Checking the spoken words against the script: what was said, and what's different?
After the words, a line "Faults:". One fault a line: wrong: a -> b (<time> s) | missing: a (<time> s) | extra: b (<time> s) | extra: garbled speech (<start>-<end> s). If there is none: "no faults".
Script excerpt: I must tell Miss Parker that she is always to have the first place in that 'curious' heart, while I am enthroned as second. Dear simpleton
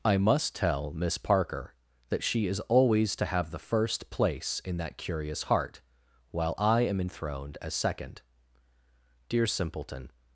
I must tell Miss Parker that she is always to have the first place in that 'curious' heart, while I am enthroned as second. Dear simpleton
Faults:
no faults